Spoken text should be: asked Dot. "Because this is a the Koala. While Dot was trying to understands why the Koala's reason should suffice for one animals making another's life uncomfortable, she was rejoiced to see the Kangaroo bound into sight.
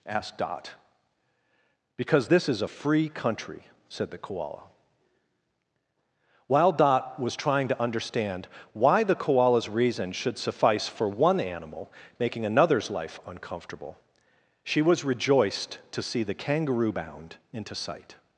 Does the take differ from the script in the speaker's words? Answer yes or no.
yes